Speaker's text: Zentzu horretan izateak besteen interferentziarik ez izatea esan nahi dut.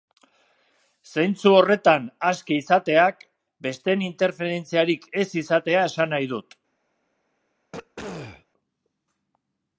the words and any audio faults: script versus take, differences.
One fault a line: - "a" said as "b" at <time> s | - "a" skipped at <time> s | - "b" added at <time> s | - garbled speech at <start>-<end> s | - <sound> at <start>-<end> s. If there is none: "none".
- "aske" added at 2.3 s
- throat clearing at 7.7-8.5 s